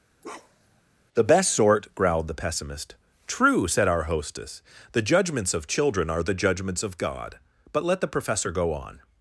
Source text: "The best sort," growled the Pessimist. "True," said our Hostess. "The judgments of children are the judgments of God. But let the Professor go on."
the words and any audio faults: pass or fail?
fail